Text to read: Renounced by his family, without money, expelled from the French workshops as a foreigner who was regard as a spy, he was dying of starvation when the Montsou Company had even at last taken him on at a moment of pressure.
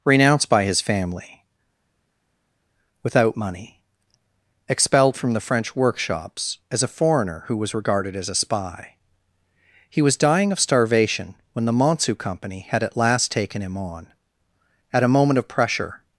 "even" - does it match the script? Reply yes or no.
no